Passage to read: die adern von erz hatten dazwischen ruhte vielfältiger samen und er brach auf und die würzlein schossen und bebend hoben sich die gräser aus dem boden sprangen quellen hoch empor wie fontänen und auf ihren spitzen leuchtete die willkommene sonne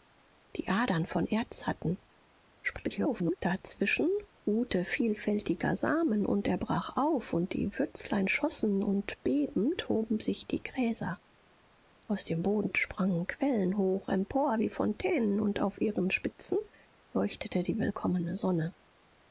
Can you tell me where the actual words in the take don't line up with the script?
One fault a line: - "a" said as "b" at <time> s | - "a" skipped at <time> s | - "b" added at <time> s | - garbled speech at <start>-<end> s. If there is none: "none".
- garbled speech at 2.6-3.4 s